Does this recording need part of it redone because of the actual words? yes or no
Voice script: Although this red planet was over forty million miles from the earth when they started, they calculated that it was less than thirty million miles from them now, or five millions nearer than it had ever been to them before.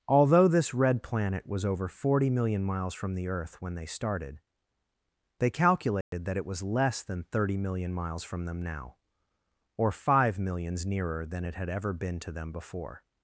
no